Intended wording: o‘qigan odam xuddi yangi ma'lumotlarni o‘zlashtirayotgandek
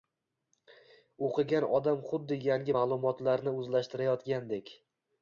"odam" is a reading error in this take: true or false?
false